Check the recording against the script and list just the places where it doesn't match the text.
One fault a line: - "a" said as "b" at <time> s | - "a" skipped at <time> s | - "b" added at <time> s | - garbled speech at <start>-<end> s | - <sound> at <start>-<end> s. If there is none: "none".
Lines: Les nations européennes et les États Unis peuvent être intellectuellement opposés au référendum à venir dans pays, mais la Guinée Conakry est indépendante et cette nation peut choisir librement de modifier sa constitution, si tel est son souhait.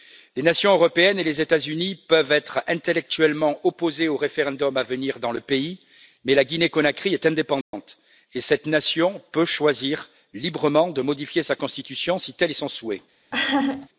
- "le" added at 5.3 s
- dropout at 7.6-7.7 s
- laugh at 13.3-13.9 s